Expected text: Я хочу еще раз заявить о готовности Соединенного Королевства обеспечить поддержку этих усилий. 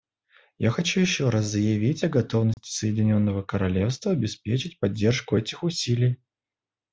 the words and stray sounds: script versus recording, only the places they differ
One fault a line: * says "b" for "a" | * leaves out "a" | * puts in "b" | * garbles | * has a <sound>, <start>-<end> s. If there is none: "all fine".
* has a dropout, 2.5-2.6 s